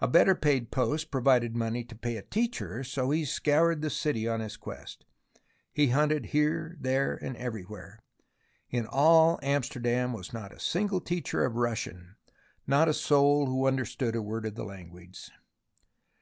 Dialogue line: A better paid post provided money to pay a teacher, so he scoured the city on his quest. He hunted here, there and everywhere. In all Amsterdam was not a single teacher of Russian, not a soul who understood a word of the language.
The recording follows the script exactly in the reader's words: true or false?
true